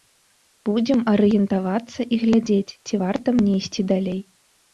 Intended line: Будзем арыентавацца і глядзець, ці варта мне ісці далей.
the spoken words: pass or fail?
pass